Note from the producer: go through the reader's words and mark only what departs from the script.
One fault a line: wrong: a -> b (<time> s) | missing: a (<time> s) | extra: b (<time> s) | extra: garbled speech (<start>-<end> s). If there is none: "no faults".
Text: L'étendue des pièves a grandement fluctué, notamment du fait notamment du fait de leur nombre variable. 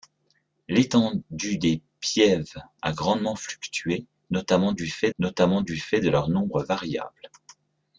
no faults